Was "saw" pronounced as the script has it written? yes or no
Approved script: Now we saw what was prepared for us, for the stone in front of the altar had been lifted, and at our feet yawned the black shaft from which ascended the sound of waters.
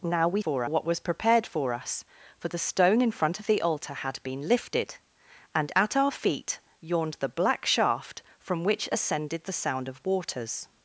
no